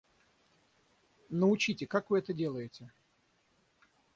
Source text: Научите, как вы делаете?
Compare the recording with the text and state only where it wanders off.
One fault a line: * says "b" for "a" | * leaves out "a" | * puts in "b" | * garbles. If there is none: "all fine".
* puts in "это"